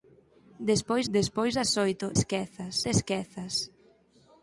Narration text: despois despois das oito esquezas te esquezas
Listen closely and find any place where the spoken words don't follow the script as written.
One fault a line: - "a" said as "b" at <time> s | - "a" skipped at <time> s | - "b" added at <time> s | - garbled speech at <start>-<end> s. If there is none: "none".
none